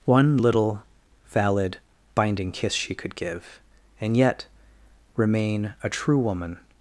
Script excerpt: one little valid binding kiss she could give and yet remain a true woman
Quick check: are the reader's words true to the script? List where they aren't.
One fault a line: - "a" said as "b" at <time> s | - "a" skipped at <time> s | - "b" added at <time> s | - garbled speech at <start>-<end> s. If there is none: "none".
none